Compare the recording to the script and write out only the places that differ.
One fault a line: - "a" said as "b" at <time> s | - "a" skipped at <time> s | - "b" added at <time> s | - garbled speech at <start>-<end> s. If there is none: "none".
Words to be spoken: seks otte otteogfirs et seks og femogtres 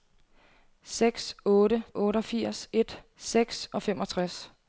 none